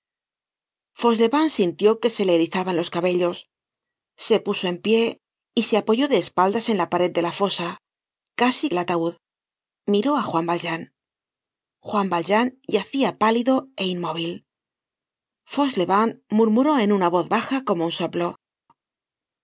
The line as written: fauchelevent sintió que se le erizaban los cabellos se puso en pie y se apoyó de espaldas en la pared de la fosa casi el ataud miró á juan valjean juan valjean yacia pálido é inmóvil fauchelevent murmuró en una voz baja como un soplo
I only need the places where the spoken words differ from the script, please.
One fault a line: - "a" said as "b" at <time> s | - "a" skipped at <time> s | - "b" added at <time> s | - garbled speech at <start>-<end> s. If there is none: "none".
none